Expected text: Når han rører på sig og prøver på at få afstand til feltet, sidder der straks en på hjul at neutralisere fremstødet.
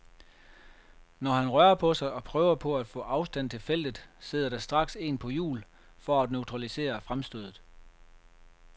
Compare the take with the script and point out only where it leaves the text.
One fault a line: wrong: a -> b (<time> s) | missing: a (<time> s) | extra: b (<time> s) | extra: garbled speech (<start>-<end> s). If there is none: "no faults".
extra: for (6.0 s)